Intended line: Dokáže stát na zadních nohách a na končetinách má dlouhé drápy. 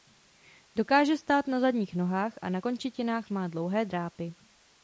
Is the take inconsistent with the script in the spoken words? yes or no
no